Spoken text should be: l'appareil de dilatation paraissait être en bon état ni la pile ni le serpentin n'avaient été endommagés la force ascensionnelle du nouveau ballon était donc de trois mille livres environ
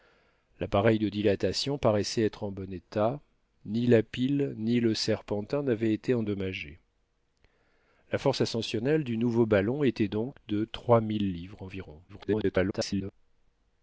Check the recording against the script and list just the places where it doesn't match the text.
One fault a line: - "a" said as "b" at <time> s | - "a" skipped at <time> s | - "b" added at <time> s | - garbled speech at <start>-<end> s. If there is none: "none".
- garbled speech at 12.1-13.1 s